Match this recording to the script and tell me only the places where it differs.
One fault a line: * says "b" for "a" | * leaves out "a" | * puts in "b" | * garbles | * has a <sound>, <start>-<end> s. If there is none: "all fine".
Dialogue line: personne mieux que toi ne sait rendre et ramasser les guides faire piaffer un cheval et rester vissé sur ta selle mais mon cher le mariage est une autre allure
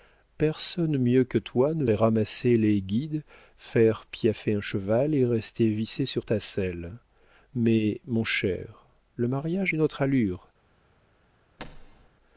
* leaves out "sait rendre"
* leaves out "est"
* has a thud, 11.6-12.1 s